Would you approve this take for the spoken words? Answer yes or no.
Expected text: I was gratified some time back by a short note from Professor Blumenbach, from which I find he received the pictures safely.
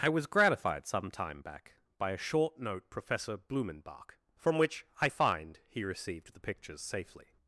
no